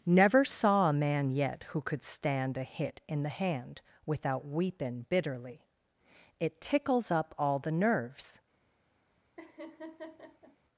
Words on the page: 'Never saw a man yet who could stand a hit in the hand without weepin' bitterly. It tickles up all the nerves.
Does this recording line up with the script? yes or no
yes